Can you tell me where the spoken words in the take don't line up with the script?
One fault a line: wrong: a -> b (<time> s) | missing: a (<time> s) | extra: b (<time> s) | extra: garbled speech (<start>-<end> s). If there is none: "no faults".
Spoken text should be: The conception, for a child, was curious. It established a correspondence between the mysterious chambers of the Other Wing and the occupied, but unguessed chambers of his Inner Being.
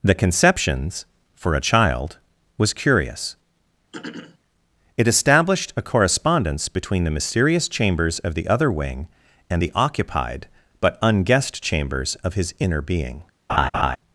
wrong: conception -> conceptions (0.1 s)